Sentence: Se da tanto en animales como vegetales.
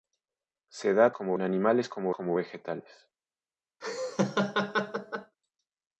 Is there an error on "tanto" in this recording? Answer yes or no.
yes